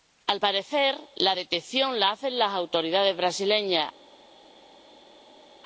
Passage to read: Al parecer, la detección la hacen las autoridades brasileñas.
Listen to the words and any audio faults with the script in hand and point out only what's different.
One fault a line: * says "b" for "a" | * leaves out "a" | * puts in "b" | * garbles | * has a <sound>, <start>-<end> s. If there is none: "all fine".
all fine